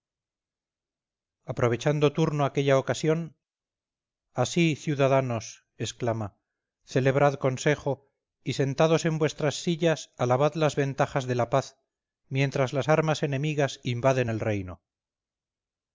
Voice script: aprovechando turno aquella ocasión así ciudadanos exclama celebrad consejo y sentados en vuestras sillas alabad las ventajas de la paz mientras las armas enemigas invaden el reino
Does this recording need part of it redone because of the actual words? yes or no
no